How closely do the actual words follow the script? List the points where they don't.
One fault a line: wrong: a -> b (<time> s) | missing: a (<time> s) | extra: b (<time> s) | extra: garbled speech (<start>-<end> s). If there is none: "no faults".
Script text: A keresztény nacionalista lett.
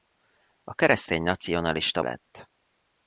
no faults